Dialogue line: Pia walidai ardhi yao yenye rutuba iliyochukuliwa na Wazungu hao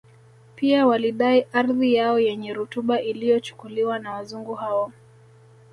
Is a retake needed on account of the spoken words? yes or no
no